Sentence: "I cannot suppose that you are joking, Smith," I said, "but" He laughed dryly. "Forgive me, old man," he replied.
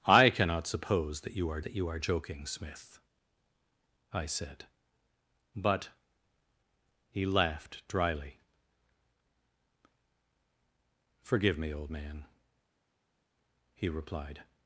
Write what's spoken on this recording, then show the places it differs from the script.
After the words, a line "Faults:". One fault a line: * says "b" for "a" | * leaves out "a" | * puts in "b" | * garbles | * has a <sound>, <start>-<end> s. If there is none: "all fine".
"I cannot suppose that you are that you are joking, Smith," I said, "but" He laughed dryly. "Forgive me, old man," he replied.
Faults:
* puts in "that you are"